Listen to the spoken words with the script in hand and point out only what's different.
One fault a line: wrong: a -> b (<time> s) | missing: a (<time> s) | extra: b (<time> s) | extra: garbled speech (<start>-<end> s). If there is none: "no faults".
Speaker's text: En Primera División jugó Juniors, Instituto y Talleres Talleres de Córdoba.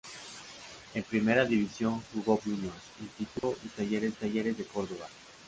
no faults